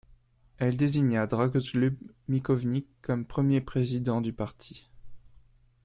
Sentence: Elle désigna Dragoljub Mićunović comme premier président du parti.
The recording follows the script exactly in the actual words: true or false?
true